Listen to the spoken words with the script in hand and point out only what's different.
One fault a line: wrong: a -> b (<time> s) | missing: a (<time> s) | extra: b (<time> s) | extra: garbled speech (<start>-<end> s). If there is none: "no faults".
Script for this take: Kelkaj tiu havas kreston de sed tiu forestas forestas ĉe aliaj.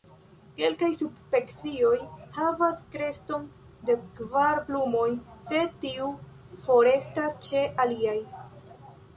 wrong: tiu -> subspecioj (1.0 s)
extra: kvar plumoj (4.2 s)
missing: forestas (7.4 s)